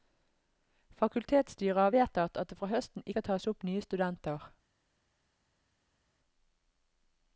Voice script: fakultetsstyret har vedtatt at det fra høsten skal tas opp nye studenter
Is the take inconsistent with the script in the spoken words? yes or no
no